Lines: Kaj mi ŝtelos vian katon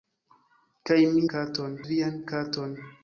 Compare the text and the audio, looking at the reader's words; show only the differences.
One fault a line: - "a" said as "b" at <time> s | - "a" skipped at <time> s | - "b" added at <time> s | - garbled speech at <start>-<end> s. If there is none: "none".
- "ŝtelos" said as "katon" at 1.3 s